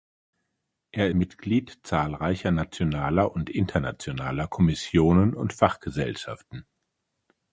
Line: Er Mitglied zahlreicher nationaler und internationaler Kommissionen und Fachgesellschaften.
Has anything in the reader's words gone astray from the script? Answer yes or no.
no